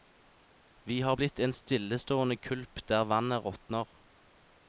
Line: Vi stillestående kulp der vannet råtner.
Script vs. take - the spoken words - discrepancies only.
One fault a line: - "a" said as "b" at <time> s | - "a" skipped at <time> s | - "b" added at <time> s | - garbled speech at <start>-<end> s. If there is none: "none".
- "har blitt en" added at 1.0 s